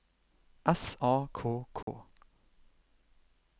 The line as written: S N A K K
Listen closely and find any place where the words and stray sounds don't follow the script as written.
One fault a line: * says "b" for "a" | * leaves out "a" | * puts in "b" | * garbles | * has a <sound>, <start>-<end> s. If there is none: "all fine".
* leaves out "N"
* has a dropout, 1.8-1.9 s